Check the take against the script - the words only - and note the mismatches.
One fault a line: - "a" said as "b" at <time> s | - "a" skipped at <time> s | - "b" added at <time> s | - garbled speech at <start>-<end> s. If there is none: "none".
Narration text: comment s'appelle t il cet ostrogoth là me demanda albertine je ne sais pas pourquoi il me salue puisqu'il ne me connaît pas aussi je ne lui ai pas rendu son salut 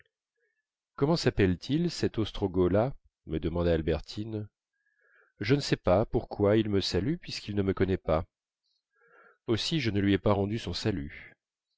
none